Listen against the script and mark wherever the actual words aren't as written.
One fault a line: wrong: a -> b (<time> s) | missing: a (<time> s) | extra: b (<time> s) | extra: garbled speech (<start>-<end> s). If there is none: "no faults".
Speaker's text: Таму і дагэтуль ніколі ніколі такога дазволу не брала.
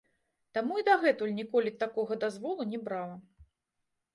missing: ніколі (1.7 s)